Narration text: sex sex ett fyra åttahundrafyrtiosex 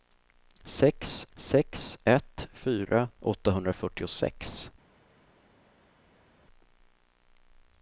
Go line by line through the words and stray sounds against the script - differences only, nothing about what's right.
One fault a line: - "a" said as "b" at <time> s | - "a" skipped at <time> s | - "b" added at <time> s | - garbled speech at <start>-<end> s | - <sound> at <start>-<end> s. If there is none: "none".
none